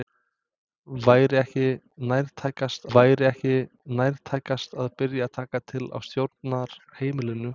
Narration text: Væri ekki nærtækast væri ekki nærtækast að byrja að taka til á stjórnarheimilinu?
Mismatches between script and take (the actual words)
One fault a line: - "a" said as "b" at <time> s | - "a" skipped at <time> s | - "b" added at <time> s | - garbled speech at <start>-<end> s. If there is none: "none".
none